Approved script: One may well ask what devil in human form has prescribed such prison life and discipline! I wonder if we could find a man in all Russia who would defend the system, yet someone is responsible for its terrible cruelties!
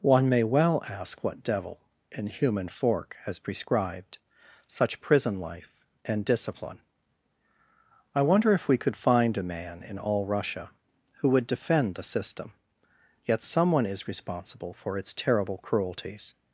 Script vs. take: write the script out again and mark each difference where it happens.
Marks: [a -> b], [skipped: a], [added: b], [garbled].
One may well ask what devil in human [form -> fork] has prescribed such prison life and discipline! I wonder if we could find a man in all Russia who would defend the system, yet someone is responsible for its terrible cruelties!